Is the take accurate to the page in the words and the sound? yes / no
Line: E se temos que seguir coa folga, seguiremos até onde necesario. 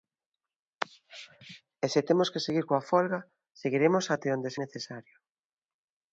yes